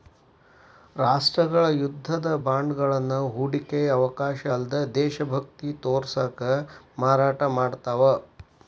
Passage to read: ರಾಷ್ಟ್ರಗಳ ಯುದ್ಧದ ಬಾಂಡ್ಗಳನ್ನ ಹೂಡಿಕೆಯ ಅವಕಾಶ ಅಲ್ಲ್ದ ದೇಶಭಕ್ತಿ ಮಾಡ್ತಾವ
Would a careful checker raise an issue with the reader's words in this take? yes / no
yes